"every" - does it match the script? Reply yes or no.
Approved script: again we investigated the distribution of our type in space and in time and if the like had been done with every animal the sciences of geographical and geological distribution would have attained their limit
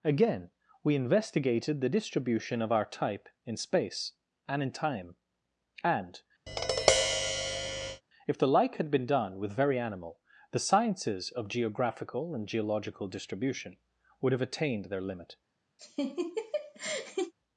no